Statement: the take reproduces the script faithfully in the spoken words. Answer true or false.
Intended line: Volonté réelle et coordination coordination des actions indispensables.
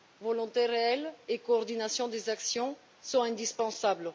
false